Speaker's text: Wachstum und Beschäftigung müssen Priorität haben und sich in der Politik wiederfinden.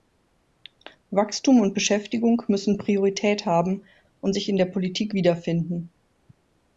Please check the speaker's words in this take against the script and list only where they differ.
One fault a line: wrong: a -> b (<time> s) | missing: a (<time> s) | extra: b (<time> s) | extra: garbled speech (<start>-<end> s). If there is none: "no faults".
no faults